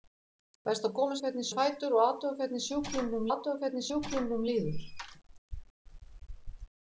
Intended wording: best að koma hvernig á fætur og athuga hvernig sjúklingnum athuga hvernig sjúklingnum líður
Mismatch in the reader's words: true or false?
false